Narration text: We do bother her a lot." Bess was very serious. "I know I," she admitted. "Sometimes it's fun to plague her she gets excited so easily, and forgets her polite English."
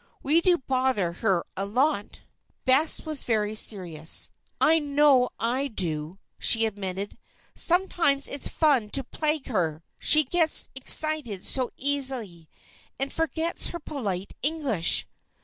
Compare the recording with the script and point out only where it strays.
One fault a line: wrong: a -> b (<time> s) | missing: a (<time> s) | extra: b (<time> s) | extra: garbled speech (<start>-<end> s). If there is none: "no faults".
extra: do (5.7 s)